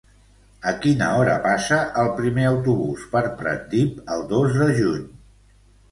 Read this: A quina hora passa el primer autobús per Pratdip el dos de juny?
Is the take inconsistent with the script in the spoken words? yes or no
no